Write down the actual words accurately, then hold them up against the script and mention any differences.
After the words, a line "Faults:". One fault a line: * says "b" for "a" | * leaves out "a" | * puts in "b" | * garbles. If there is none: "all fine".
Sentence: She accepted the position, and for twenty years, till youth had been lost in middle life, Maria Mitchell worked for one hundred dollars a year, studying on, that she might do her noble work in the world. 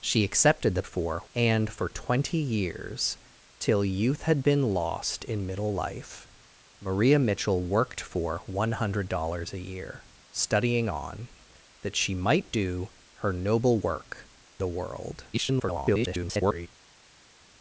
She accepted the for, and for twenty years, till youth had been lost in middle life, Maria Mitchell worked for one hundred dollars a year, studying on, that she might do her noble work the world. [garbled]
Faults:
* says "for" for "position"
* leaves out "in"
* garbles